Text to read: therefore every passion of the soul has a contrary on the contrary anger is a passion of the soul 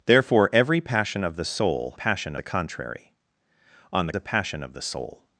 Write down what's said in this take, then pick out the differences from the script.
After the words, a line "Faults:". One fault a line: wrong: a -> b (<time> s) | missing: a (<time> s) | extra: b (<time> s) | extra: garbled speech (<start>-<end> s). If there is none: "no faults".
therefore every passion of the soul passion a contrary on the a passion of the soul
Faults:
wrong: has -> passion (1.9 s)
missing: contrary anger is (4.1 s)